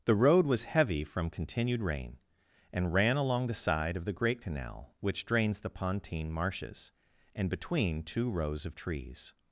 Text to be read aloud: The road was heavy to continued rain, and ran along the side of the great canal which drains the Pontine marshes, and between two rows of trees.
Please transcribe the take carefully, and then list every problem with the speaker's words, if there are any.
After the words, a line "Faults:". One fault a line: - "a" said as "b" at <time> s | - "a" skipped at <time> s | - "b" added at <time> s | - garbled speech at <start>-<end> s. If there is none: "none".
The road was heavy from continued rain, and ran along the side of the great canal which drains the Pontine marshes, and between two rows of trees.
Faults:
- "to" said as "from" at 1.0 s